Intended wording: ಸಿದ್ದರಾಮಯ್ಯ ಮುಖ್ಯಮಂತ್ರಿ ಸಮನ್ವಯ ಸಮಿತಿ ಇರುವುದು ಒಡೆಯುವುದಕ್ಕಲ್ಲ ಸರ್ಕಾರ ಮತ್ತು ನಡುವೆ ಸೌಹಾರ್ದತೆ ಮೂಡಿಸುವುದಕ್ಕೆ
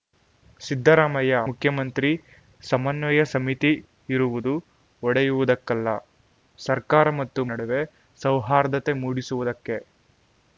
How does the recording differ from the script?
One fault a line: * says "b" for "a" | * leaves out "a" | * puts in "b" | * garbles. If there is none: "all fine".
all fine